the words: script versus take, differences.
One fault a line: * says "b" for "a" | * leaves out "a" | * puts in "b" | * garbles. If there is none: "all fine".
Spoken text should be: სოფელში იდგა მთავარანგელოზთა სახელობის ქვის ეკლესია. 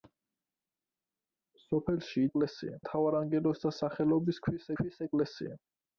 * says "ეკლესია" for "იდგა"
* puts in "ქვის"